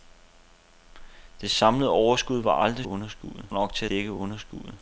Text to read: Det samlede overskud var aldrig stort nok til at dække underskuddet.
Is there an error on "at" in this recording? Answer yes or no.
yes